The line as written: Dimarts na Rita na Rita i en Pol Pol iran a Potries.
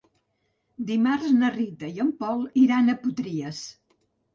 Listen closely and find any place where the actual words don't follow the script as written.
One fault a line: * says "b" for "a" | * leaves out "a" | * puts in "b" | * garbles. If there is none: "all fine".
* leaves out "na Rita"
* leaves out "Pol"